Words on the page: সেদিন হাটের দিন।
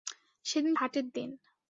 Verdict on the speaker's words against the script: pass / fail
pass